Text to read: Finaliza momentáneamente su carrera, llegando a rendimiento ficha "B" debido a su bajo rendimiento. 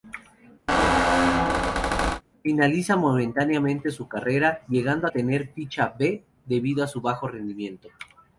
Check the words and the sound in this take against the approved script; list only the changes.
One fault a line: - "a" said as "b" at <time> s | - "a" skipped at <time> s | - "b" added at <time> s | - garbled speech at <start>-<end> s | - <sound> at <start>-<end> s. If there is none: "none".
- squeak at 0.7-2.2 s
- "rendimiento" said as "tener" at 5.1 s